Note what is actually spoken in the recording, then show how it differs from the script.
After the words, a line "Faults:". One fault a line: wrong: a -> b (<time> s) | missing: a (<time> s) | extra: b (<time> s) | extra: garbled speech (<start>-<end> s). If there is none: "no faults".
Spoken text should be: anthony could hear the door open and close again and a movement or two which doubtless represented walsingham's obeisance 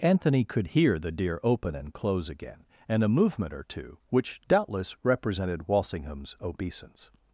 anthony could hear the deer open and close again and a movement or two which doubtless represented walsingham's obeisance
Faults:
wrong: door -> deer (1.1 s)